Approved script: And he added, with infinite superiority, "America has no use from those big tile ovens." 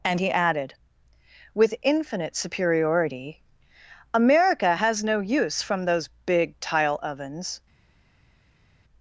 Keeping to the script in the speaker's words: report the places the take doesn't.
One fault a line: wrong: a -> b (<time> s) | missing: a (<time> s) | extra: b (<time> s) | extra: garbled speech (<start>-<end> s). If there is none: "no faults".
no faults